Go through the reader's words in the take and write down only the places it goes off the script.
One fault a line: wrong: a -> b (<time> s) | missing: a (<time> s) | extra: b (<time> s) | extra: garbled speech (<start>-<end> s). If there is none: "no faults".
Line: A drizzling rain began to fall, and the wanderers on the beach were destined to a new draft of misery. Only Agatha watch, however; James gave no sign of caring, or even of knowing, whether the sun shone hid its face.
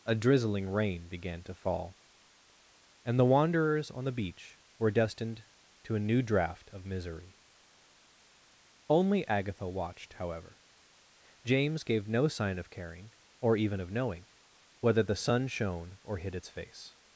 wrong: watch -> watched (9.7 s)
extra: or (16.0 s)